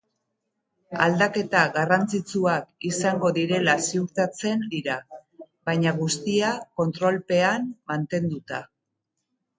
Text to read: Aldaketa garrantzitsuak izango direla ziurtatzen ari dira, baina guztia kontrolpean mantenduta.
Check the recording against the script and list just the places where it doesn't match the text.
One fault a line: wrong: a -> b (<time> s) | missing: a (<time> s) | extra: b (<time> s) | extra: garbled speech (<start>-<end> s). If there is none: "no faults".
missing: ari (4.6 s)